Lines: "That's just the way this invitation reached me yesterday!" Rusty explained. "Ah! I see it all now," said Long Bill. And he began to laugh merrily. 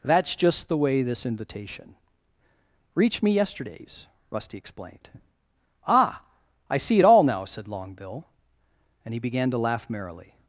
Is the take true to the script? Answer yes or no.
no